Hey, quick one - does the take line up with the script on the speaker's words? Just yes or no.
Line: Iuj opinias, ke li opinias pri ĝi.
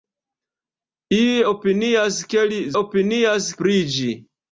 yes